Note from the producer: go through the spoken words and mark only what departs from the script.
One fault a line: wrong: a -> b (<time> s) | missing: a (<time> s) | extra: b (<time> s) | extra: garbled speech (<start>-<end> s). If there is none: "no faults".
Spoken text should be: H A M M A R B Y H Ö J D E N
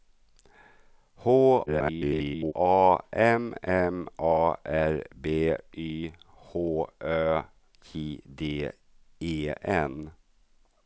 extra: garbled speech (1.7-2.5 s)